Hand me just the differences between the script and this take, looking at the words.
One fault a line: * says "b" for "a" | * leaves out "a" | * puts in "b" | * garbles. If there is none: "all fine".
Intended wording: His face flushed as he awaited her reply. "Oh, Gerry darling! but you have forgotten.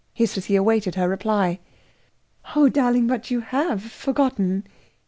* leaves out "face flushed"
* leaves out "Gerry"